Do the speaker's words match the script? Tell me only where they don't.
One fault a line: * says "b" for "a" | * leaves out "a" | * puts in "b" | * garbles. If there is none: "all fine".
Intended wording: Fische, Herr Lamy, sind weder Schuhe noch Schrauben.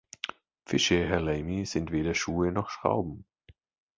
all fine